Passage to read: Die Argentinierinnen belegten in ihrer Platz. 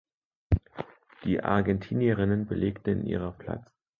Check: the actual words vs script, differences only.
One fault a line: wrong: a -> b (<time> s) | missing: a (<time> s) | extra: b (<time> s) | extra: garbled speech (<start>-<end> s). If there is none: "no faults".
no faults